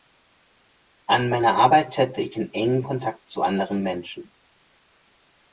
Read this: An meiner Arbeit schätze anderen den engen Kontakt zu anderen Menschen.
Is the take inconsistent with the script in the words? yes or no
yes